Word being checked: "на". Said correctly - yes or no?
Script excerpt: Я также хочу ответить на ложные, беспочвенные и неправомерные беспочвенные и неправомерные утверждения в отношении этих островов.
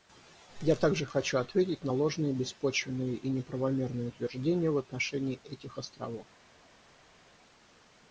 yes